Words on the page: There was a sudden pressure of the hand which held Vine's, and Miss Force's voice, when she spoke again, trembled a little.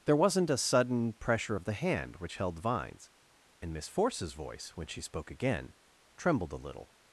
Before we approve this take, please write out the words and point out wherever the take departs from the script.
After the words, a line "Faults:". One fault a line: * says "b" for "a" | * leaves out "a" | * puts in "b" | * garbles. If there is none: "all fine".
There wasn't a sudden pressure of the hand which held Vine's, and Miss Force's voice, when she spoke again, trembled a little.
Faults:
* says "wasn't" for "was"